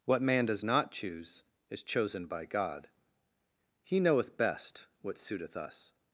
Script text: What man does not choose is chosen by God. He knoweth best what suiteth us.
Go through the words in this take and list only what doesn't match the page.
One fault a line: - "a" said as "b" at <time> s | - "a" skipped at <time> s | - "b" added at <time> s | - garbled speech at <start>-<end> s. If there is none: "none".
none